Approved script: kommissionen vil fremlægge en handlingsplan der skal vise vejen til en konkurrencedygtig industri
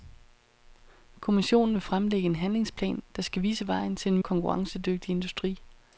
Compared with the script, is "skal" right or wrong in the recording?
right